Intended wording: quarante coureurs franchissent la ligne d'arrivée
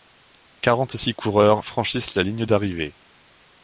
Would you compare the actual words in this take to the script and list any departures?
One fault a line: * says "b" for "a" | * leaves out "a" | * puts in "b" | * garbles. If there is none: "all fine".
* puts in "six"